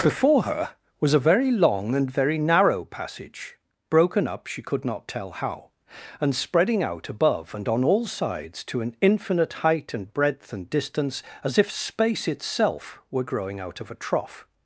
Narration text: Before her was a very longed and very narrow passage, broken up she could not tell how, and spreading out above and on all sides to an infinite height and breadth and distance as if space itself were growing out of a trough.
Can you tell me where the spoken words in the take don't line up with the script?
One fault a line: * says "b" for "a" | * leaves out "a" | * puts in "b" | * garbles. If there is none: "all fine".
* says "long" for "longed"